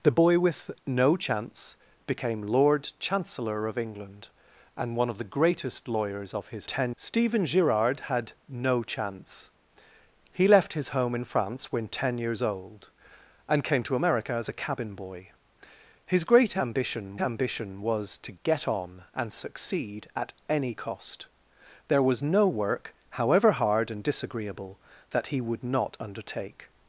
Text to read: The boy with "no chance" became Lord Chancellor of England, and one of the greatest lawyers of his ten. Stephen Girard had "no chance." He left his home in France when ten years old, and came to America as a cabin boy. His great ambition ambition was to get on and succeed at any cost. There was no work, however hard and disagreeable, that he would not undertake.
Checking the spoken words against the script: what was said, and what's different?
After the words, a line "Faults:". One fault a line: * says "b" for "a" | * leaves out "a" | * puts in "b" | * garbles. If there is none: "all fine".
The boy with "no chance" became Lord Chancellor of England, and one of the greatest lawyers of his ten. Stephen Girard had "no chance." He left his home in France when ten years old, and came to America as a cabin boy. His great ambition ambition was to get on and succeed at any cost. There was no work, however hard and disagreeable, that he would not undertake.
Faults:
all fine